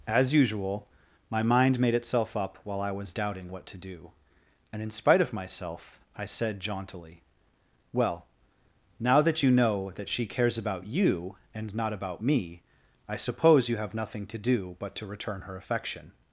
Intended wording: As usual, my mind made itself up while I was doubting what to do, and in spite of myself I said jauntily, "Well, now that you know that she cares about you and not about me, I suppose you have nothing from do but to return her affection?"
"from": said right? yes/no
no